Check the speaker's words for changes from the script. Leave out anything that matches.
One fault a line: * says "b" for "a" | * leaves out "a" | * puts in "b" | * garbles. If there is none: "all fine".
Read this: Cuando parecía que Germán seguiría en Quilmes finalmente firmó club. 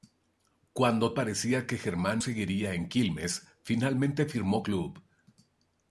all fine